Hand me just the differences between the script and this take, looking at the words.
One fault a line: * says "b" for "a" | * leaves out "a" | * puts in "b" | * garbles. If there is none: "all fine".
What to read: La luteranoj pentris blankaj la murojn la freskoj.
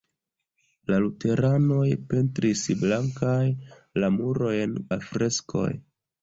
all fine